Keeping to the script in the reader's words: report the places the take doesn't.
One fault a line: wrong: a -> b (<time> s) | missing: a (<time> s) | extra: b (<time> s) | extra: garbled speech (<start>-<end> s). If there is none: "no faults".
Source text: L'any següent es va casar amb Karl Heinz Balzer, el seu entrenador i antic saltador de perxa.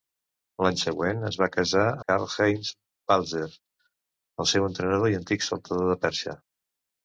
missing: amb (1.8 s)